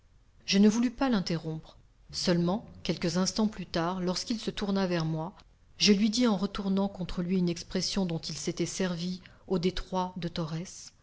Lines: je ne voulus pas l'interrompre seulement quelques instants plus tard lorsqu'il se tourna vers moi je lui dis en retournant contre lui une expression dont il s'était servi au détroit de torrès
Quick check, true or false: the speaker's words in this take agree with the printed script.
true